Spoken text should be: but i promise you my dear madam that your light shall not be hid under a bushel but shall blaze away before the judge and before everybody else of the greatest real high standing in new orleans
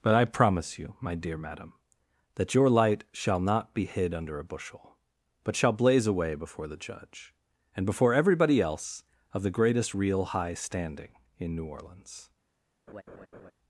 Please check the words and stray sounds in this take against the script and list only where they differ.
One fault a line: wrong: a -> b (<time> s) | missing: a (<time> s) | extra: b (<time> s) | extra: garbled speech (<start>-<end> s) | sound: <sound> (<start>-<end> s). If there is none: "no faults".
sound: laugh (12.9-13.5 s)